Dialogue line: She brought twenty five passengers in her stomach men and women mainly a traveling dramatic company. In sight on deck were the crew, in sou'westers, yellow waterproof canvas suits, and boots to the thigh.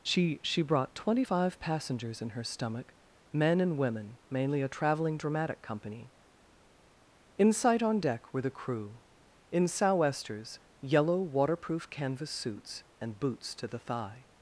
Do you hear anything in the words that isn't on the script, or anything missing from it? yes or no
yes